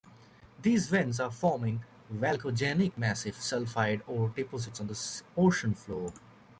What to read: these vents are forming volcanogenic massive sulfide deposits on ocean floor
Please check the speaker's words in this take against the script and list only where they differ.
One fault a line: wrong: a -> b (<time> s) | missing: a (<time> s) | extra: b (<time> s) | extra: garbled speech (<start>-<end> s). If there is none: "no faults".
extra: ore (4.1 s)
extra: the (4.8 s)